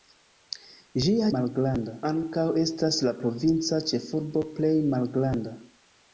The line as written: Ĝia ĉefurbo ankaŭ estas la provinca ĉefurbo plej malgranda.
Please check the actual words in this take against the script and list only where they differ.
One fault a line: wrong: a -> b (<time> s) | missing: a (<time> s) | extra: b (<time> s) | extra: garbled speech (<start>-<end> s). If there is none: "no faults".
wrong: ĉefurbo -> malgranda (1.4 s)